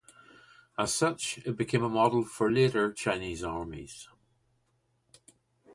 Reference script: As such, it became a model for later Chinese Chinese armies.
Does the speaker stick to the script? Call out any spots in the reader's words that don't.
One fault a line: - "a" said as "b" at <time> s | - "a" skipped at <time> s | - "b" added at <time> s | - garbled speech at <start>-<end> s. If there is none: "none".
- "Chinese" skipped at 3.4 s